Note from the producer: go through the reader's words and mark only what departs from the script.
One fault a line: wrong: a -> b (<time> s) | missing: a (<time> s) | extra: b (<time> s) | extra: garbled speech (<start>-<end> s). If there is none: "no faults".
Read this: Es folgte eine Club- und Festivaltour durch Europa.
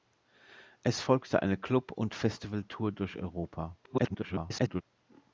extra: garbled speech (3.8-4.8 s)